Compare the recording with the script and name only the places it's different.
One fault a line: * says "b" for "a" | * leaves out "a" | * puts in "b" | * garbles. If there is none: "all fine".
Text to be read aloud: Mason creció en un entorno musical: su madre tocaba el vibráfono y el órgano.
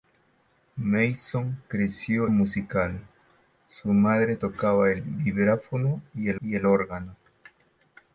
* leaves out "en un entorno"
* puts in "y el"